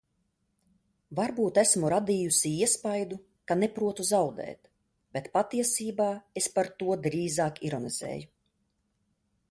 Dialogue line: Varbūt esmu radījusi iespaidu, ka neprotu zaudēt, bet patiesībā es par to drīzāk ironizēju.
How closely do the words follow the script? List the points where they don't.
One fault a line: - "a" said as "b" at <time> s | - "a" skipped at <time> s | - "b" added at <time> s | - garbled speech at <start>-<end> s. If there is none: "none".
none